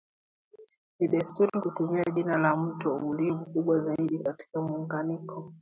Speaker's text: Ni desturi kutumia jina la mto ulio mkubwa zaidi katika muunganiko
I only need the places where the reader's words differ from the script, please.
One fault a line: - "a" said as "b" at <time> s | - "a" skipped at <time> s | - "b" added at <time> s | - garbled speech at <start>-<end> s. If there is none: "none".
none